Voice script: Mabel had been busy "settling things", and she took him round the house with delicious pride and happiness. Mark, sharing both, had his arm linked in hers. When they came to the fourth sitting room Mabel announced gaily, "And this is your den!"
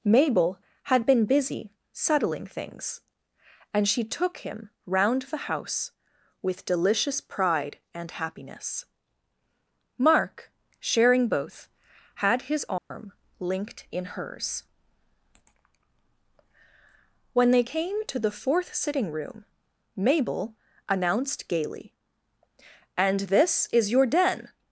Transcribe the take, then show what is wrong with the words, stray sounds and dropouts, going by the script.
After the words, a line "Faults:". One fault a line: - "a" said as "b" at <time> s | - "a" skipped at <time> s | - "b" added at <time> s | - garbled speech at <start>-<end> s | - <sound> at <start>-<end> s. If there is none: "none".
Mabel had been busy "settling things", and she took him round the house with delicious pride and happiness. Mark, sharing both, had his arm linked in hers. When they came to the fourth sitting room Mabel announced gaily, "And this is your den!"
Faults:
- dropout at 12.8-12.9 s